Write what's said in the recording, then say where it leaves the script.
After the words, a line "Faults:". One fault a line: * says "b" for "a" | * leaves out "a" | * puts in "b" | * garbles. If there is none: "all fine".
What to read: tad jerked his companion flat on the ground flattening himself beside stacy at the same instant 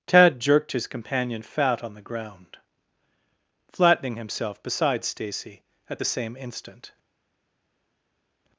tad jerked his companion fat on the ground flattening himself beside stacy at the same instant
Faults:
* says "fat" for "flat"